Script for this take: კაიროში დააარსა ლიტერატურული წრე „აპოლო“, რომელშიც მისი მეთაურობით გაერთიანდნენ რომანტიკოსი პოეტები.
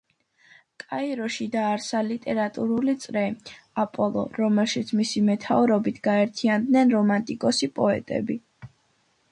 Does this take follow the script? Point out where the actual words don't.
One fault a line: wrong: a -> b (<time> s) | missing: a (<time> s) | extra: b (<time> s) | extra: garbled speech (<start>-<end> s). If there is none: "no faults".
no faults